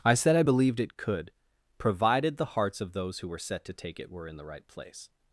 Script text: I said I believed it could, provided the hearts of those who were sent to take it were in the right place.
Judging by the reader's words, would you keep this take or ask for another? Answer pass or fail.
fail